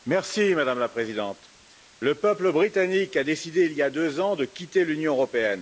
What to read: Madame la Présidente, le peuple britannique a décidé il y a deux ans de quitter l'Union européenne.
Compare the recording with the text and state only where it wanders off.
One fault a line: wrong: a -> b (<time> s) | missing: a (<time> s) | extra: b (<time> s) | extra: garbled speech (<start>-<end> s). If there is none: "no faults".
no faults